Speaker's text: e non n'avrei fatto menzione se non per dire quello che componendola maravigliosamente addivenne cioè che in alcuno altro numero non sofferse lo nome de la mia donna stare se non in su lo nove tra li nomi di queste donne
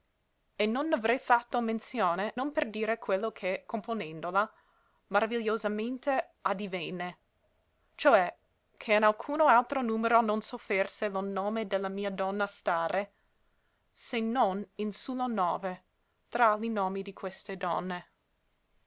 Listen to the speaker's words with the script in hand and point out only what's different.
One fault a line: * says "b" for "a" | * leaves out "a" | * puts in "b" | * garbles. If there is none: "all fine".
* leaves out "se"